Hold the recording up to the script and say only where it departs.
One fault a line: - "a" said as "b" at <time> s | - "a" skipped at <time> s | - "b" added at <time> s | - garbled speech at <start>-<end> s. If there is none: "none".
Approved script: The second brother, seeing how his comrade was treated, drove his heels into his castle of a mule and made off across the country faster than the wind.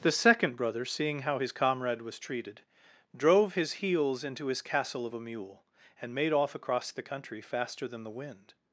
none